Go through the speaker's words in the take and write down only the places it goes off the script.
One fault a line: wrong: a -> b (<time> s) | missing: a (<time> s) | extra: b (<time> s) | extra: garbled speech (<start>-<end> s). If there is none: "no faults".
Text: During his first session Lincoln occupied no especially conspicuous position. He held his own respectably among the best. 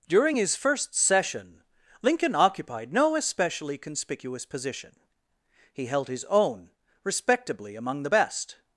no faults